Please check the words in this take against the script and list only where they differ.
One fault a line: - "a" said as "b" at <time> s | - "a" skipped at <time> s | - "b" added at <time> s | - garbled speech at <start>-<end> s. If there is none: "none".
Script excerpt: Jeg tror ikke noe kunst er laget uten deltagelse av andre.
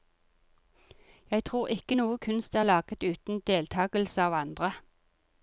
none